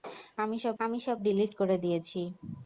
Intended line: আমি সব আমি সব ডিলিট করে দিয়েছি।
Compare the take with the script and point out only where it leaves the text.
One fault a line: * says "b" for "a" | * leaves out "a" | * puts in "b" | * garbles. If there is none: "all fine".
all fine